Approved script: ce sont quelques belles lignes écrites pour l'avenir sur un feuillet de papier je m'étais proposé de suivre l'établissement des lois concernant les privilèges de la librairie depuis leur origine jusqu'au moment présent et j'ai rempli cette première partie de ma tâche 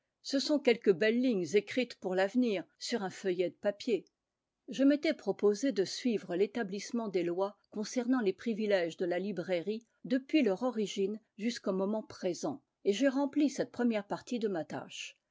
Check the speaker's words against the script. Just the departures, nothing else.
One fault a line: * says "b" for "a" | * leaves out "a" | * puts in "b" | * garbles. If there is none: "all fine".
all fine